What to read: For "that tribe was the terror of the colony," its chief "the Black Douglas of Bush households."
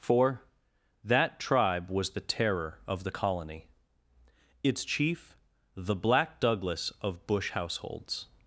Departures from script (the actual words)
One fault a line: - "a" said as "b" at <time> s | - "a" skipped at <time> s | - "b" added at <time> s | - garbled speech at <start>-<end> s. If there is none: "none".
none